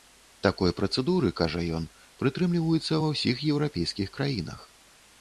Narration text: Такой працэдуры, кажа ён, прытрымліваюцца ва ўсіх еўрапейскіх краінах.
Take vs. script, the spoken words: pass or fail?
pass